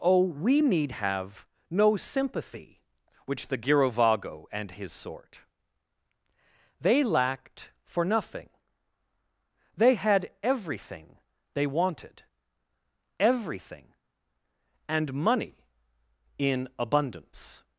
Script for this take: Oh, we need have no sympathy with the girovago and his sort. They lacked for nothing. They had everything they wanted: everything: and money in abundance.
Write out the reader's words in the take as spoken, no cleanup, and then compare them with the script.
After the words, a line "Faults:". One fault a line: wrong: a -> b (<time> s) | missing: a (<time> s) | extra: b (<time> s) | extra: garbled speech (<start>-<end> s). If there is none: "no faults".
Oh, we need have no sympathy which the girovago and his sort. They lacked for nothing. They had everything they wanted: everything: and money in abundance.
Faults:
wrong: with -> which (3.3 s)